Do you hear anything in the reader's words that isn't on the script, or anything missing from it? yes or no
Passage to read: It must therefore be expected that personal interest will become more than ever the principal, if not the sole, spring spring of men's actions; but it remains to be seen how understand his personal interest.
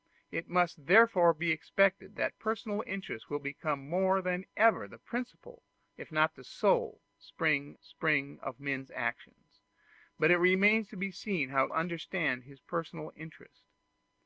no